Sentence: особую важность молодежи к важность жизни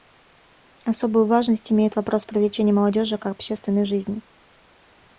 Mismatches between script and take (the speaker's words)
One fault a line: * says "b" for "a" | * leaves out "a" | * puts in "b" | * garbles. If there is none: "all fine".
* puts in "имеет вопрос привлечения"
* says "общественной" for "важность"